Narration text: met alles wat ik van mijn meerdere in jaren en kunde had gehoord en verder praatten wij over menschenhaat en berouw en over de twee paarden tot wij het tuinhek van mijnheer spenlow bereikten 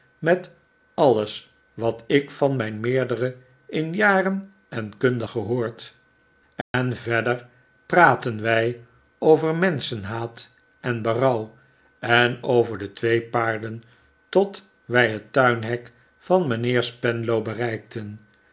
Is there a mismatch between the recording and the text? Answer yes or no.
yes